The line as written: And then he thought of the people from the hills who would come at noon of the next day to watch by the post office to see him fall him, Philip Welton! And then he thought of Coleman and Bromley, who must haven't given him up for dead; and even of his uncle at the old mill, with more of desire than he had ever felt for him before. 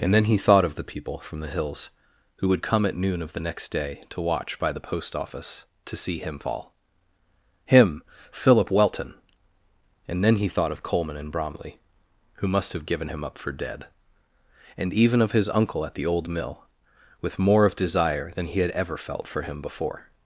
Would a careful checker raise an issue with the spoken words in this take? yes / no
yes